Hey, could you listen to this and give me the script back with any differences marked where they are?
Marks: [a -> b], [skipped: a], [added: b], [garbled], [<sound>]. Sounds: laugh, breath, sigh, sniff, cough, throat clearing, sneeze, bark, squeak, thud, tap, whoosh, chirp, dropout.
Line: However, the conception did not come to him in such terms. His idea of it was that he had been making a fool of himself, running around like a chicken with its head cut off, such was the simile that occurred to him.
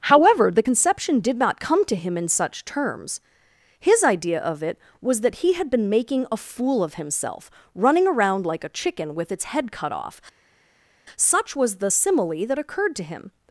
However, the conception did not come to him in such terms. His idea of it was that he had been making a fool of himself, running around like a chicken with its head cut off, such was the simile that occurred to him.